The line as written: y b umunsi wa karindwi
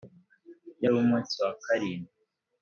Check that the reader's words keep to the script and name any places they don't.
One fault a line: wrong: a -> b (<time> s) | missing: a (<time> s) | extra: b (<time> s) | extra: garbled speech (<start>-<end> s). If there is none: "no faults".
no faults